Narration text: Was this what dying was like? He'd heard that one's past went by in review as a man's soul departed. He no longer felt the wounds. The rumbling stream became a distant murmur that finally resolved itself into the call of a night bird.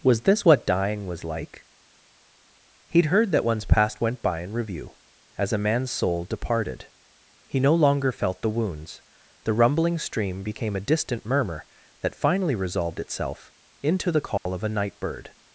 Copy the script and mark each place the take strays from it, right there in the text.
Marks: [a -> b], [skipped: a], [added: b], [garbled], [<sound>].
Was this what dying was like? He'd heard that one's past went by in review as a man's soul departed. He no longer felt the wounds. The rumbling stream became a distant murmur that finally resolved itself into the call [dropout] of a night bird.